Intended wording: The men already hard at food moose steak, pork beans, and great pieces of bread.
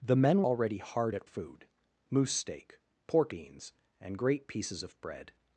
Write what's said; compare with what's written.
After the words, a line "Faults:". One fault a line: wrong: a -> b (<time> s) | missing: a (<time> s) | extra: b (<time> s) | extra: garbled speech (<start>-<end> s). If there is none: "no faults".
The men already hard at food moose steak, pork beans, and great pieces of bread.
Faults:
no faults